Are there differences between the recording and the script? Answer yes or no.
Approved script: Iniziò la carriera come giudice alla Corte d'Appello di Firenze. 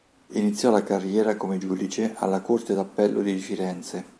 no